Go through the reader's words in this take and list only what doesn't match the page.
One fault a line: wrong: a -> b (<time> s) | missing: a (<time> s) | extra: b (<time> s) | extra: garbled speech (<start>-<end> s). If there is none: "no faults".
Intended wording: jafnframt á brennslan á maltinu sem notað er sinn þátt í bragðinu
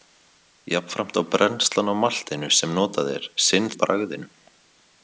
missing: þátt (3.7 s)